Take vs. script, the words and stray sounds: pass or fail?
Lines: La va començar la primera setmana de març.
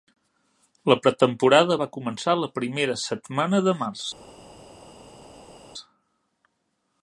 fail